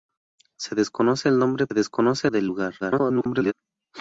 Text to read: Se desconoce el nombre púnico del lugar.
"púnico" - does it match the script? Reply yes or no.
no